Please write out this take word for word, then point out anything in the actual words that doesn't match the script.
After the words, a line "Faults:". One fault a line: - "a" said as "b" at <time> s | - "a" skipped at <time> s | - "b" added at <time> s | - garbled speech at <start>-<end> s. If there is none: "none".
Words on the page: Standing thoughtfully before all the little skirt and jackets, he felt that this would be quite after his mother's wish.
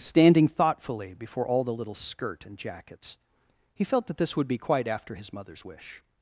Standing thoughtfully before all the little skirt and jackets, he felt that this would be quite after his mother's wish.
Faults:
none